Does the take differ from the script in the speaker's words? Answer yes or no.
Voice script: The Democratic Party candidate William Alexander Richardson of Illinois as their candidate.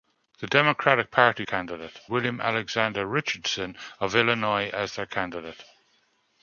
no